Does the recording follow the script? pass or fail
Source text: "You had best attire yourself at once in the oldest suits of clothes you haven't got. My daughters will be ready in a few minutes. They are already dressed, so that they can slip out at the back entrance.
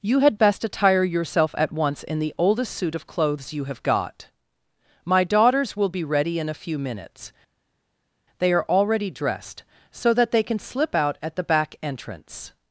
fail